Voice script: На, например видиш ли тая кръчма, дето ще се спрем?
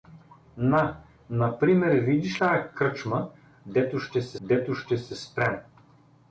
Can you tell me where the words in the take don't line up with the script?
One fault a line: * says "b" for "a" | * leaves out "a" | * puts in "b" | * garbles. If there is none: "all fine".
* leaves out "ли"
* puts in "дето ще се"